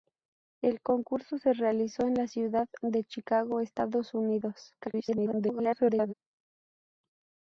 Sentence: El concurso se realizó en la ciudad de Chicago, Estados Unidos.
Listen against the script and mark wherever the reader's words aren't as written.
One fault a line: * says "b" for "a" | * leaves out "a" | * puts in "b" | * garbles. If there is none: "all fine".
* garbles